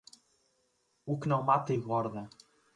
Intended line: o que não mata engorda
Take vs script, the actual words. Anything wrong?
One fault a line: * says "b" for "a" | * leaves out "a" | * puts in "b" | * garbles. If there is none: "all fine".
all fine